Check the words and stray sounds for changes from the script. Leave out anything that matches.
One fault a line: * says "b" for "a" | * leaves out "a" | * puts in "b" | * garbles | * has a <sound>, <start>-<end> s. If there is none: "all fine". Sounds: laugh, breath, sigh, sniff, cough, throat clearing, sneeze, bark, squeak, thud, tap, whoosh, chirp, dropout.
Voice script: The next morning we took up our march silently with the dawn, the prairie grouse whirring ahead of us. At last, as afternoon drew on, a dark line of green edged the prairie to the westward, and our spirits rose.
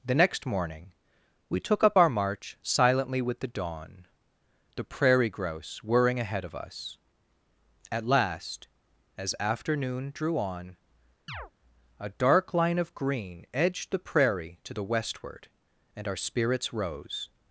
* has a chirp, 11.3-11.5 s